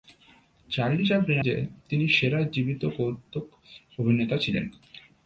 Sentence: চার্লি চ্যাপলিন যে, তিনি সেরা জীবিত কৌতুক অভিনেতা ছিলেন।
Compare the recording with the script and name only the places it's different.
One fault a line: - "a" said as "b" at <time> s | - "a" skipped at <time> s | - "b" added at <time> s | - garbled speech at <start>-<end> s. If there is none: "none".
none